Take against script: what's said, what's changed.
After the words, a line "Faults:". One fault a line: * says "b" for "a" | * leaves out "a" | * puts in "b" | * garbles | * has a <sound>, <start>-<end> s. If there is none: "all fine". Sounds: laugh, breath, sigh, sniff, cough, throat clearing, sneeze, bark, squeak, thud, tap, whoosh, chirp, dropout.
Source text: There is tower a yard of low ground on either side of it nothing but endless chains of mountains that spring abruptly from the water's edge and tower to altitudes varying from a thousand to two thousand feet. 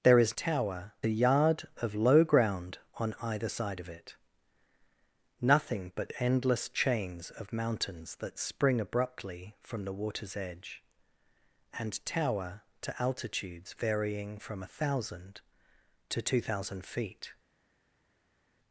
There is tower a yard of low ground on either side of it nothing but endless chains of mountains that spring abruptly from the water's edge and tower to altitudes varying from a thousand to two thousand feet.
Faults:
all fine